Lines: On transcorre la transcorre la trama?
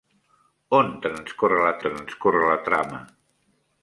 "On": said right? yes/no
yes